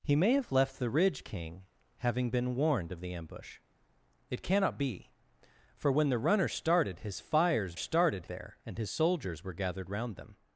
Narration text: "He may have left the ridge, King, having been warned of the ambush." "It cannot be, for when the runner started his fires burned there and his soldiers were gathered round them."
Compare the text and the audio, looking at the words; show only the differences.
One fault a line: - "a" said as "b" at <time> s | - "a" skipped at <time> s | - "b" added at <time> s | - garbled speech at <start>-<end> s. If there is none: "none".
- "burned" said as "started" at 7.7 s